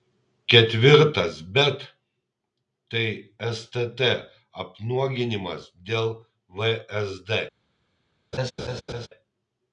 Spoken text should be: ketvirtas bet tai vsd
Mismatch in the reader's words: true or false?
true